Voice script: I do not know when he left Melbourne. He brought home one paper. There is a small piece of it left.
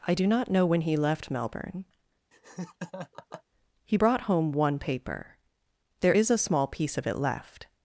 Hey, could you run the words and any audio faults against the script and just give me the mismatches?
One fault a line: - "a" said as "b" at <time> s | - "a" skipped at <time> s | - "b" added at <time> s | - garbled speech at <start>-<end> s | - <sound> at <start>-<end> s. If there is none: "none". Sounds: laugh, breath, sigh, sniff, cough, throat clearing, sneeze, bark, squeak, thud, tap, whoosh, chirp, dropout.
- laugh at 2.3-3.4 s